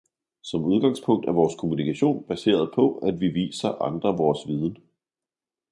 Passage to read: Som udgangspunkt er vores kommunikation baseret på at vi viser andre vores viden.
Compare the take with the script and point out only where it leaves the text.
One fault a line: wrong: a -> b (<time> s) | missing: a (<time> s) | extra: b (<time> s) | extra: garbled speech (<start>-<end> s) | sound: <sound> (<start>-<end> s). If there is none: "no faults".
no faults